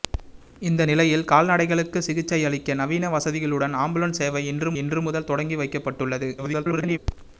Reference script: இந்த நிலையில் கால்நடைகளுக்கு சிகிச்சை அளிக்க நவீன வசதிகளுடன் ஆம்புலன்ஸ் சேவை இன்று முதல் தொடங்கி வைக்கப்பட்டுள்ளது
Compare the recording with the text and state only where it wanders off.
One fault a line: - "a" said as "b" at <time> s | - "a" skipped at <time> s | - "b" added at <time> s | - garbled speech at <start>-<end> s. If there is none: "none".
- "இன்று" added at 4.8 s
- garbled speech at 6.4-7.0 s